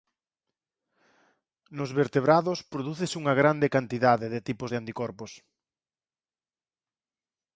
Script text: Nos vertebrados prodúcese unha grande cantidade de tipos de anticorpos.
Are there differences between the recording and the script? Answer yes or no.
no